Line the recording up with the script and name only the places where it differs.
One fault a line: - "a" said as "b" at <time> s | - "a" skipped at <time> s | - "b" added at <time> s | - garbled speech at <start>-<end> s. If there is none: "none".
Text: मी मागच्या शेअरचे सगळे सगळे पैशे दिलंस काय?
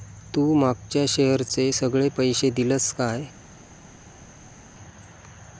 - "मी" said as "तू" at 0.3 s
- "सगळे" skipped at 2.1 s